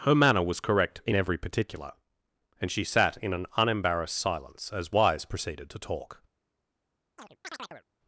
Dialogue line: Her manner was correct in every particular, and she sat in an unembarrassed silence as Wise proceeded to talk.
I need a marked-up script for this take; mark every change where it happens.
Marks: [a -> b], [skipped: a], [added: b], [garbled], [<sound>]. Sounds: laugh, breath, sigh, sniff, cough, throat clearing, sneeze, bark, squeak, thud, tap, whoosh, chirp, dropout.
Her manner was correct in every particular, and she sat in an unembarrassed silence as Wise proceeded to talk. [chirp]